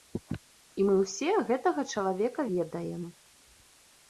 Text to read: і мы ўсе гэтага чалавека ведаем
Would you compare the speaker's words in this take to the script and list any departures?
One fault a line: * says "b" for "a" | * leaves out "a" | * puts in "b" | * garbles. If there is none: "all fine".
all fine